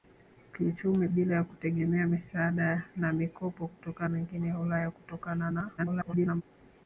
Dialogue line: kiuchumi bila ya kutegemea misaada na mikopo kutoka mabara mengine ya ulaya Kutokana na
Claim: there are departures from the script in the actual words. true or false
true